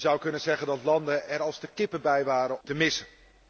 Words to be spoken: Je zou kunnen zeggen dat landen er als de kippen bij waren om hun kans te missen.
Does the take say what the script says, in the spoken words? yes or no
no